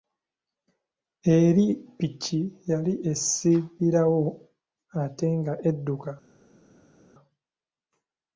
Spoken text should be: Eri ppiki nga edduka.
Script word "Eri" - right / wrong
right